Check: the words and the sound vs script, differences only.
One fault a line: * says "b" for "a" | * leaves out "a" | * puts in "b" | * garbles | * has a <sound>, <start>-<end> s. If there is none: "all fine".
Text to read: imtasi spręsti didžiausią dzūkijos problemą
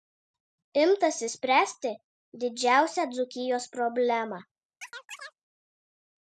* has a chirp, 4.8-5.3 s